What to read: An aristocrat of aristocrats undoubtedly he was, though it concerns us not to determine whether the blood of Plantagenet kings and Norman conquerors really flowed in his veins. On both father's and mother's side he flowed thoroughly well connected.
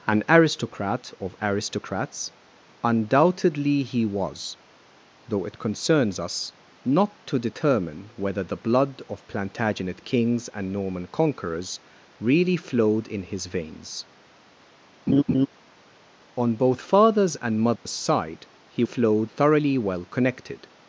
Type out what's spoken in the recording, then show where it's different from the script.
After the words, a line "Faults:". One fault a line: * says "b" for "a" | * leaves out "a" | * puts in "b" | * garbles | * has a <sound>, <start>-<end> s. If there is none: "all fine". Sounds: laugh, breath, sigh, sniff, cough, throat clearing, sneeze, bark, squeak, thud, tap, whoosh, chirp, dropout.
An aristocrat of aristocrats undoubtedly he was, though it concerns us not to determine whether the blood of Plantagenet kings and Norman conquerors really flowed in his veins. On both father's and mother's side he flowed thoroughly well connected.
Faults:
* has a laugh, 15.1-15.5 s
* has a dropout, 17.8-17.9 s